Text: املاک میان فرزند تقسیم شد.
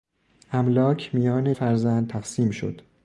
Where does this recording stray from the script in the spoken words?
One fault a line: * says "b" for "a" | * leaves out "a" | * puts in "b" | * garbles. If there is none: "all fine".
all fine